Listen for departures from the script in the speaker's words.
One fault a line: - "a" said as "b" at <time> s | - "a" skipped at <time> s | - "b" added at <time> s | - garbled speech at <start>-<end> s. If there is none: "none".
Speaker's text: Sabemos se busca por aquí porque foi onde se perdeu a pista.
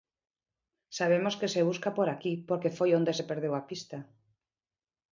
- "que" added at 1.4 s